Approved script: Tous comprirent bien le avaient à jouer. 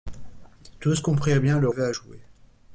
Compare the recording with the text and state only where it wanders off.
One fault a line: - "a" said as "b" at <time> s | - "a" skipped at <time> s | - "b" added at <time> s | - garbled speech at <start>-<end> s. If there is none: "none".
none